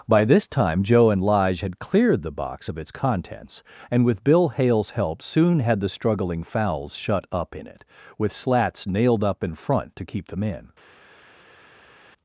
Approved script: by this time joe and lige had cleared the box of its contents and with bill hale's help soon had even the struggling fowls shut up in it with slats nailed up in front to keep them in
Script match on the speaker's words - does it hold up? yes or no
no